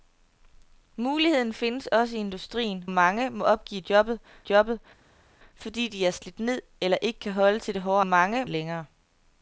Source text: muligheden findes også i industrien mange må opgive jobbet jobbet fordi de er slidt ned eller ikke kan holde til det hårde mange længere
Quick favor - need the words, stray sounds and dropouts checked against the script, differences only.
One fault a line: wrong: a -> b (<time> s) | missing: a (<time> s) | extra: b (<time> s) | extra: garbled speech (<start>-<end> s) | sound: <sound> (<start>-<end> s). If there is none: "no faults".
no faults